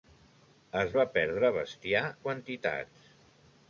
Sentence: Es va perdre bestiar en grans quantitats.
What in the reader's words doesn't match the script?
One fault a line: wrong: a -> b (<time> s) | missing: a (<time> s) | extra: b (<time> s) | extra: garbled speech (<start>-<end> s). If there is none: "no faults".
missing: en grans (2.0 s)